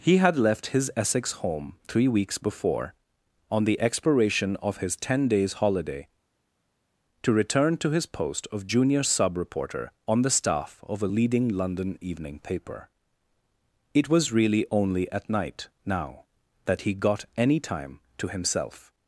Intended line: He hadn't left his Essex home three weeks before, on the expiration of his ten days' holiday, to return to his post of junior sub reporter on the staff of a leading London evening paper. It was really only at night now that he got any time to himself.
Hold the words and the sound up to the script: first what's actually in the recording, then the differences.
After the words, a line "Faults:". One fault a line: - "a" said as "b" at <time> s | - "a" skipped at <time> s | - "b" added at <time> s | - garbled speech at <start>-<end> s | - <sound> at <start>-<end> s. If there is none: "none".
He had left his Essex home three weeks before, on the expiration of his ten days' holiday, to return to his post of junior sub reporter on the staff of a leading London evening paper. It was really only at night now that he got any time to himself.
Faults:
- "hadn't" said as "had" at 0.2 s